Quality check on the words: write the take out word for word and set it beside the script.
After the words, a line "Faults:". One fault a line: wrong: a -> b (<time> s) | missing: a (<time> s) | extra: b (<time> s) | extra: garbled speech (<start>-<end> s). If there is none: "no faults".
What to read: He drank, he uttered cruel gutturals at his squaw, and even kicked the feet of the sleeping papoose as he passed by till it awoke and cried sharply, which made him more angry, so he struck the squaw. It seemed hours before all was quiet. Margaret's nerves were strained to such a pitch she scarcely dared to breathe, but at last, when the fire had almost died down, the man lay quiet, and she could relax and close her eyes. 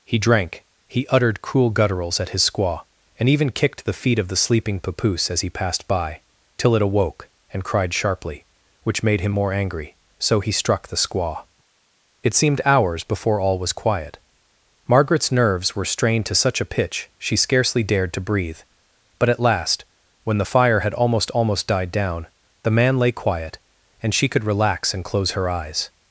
He drank, he uttered cruel gutturals at his squaw, and even kicked the feet of the sleeping papoose as he passed by till it awoke and cried sharply, which made him more angry, so he struck the squaw. It seemed hours before all was quiet. Margaret's nerves were strained to such a pitch she scarcely dared to breathe, but at last, when the fire had almost almost died down, the man lay quiet, and she could relax and close her eyes.
Faults:
extra: almost (21.3 s)